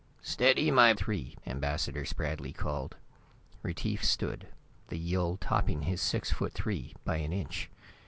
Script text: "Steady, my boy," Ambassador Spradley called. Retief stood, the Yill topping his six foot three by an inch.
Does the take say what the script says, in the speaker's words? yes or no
no